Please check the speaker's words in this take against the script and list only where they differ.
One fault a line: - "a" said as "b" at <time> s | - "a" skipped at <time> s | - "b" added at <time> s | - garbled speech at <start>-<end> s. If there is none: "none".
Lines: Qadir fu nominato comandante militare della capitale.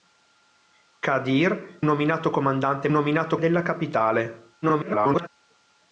- "fu" skipped at 1.8 s
- "militare" said as "nominato" at 2.9 s
- garbled speech at 4.6-5.3 s